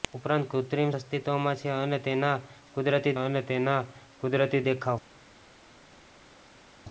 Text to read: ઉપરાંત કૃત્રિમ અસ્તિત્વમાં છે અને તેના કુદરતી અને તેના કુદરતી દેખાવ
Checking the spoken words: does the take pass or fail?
pass